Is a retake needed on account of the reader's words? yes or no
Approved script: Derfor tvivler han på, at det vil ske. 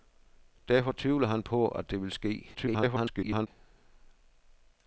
yes